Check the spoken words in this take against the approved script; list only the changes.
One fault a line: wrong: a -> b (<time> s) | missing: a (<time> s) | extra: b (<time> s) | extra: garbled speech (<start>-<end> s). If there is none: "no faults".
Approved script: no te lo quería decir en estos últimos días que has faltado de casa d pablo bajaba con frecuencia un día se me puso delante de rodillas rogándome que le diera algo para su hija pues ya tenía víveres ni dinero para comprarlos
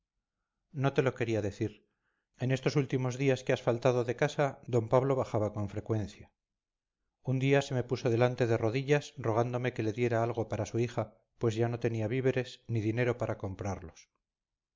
extra: no (11.7 s)